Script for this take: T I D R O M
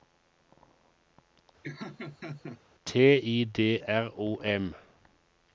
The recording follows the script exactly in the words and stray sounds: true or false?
false